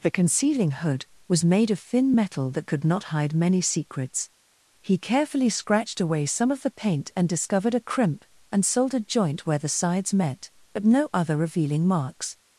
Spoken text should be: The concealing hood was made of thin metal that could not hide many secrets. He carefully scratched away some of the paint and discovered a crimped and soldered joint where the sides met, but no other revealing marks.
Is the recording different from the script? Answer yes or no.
yes